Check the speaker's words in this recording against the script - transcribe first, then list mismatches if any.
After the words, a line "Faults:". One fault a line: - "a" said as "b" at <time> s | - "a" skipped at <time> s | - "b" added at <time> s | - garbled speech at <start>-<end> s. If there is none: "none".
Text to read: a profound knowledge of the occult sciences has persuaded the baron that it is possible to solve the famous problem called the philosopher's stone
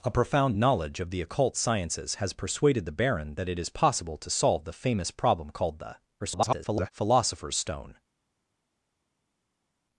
a profound knowledge of the occult sciences has persuaded the baron that it is possible to solve the famous problem called the [garbled] philosopher's stone
Faults:
- garbled speech at 6.2-6.9 s